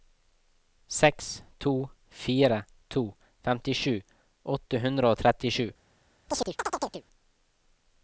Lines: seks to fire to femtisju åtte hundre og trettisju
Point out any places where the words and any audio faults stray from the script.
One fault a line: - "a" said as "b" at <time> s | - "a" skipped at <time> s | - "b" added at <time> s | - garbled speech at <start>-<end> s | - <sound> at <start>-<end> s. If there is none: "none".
- chirp at 6.3-7.1 s